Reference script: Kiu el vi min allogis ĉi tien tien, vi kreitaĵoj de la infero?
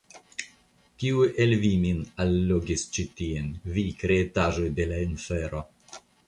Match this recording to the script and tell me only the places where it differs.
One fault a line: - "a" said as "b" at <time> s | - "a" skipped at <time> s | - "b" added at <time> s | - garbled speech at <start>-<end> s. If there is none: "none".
- "tien" skipped at 3.5 s